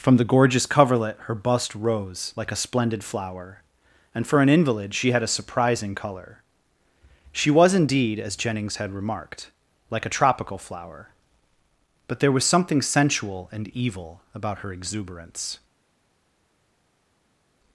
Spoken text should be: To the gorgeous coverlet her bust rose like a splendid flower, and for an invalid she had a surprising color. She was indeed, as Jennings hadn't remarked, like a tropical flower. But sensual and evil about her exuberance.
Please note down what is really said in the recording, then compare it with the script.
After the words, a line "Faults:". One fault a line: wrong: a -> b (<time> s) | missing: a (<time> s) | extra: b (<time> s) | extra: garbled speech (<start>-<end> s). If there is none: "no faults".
From the gorgeous coverlet her bust rose like a splendid flower, and for an invalid she had a surprising color. She was indeed, as Jennings had remarked, like a tropical flower. But there was something sensual and evil about her exuberance.
Faults:
wrong: To -> From (0.0 s)
wrong: hadn't -> had (8.8 s)
extra: there was something (12.2 s)